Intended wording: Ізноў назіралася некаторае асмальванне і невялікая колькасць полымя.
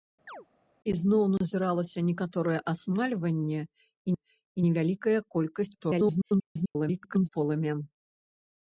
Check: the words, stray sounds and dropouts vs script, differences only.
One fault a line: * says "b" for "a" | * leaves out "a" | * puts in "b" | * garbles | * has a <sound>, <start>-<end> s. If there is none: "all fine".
* has a chirp, 0.3-0.5 s
* puts in "і"
* garbles